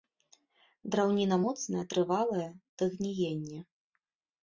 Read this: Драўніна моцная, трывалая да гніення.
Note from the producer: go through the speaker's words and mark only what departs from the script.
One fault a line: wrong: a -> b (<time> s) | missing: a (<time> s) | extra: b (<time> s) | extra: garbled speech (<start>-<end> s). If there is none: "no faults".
no faults